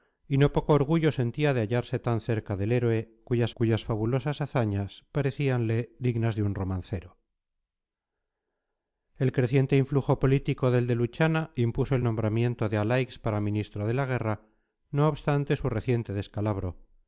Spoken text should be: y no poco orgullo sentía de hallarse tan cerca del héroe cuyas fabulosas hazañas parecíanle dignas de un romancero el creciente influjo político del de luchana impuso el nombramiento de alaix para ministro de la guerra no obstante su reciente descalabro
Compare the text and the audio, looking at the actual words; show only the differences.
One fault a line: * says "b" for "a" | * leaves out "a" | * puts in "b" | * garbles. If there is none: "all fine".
* puts in "cuyas"